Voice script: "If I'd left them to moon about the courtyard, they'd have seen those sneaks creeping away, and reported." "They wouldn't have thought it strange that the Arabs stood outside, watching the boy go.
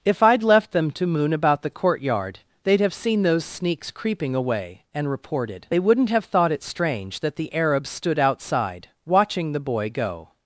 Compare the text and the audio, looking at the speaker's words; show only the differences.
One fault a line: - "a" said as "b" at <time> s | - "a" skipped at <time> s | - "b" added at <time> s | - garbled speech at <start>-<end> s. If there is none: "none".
none